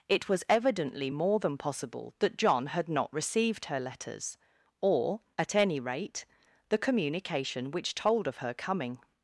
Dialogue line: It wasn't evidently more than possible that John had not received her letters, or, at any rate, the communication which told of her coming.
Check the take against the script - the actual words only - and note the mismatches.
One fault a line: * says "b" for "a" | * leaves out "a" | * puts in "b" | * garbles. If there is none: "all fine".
* says "was" for "wasn't"